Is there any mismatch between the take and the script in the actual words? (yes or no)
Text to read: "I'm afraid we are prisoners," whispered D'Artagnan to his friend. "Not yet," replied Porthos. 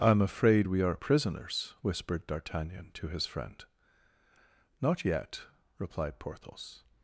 no